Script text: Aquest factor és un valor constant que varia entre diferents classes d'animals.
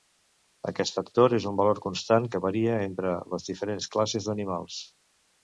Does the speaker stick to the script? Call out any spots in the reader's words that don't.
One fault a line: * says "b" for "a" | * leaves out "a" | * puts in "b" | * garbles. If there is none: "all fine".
* puts in "les"